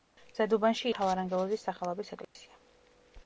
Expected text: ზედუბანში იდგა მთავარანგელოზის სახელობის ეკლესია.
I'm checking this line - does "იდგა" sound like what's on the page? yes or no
no